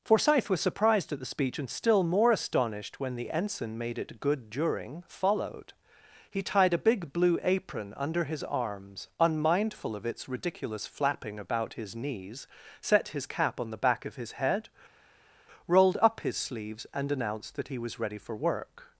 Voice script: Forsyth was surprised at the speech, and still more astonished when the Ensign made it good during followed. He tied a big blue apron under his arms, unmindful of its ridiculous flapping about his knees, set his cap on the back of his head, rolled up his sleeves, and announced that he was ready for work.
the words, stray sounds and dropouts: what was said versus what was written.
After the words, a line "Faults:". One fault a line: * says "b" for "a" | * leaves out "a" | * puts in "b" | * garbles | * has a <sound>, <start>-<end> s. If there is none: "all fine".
Forsyth was surprised at the speech, and still more astonished when the Ensign made it good during followed. He tied a big blue apron under his arms, unmindful of its ridiculous flapping about his knees, set his cap on the back of his head, rolled up his sleeves, and announced that he was ready for work.
Faults:
all fine